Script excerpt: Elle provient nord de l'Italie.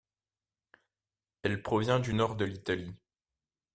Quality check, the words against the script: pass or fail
fail